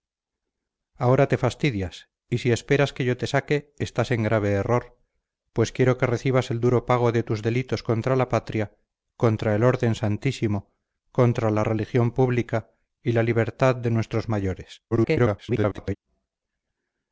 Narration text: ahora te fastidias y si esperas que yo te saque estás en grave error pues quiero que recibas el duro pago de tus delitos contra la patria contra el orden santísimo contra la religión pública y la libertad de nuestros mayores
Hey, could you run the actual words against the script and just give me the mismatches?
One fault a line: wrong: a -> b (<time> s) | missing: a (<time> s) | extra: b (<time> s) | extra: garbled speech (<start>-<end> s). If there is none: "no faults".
extra: garbled speech (14.9-16.0 s)